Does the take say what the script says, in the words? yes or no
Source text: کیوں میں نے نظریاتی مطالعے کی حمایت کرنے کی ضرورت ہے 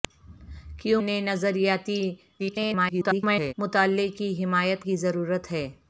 no